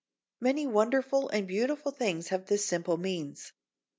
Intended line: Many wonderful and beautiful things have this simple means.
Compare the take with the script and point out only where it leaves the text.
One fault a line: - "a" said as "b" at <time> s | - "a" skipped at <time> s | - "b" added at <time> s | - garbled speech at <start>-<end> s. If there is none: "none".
none